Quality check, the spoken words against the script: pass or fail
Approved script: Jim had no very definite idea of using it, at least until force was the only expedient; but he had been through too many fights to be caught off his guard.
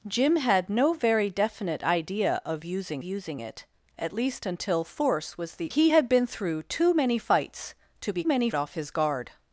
fail